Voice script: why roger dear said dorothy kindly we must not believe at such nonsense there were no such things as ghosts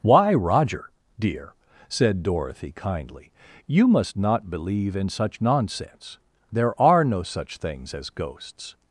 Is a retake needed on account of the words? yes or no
yes